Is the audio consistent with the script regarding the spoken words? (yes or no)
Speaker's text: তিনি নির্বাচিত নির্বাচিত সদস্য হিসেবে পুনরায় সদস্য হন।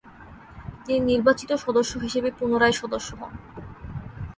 no